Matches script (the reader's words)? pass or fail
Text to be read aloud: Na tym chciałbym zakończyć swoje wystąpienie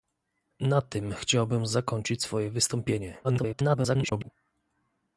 fail